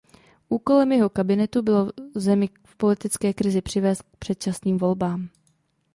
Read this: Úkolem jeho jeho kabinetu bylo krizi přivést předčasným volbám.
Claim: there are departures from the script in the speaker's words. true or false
true